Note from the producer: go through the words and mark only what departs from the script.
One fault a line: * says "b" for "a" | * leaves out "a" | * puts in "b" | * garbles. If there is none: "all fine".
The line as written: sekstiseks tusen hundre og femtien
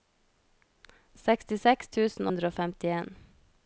all fine